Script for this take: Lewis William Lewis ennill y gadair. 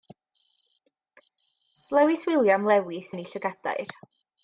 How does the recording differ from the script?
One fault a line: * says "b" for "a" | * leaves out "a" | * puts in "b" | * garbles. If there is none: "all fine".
all fine